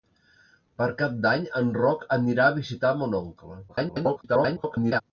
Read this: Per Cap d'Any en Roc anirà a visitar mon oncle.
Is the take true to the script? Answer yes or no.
no